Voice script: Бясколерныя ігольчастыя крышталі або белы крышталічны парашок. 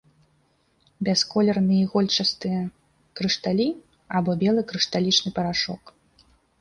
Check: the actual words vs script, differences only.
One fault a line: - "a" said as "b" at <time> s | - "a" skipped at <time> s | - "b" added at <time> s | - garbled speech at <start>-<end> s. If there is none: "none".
none